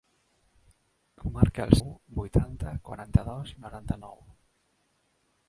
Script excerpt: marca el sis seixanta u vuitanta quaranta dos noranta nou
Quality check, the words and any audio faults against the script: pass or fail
fail